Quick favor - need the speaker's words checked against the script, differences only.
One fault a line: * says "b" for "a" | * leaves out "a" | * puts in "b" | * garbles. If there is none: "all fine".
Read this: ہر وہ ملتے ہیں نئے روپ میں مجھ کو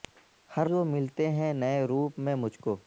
all fine